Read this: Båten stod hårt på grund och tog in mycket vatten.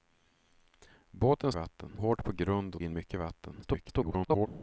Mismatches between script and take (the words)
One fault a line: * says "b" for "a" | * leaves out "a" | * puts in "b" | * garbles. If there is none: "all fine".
* says "vatten" for "stod"
* leaves out "tog"
* garbles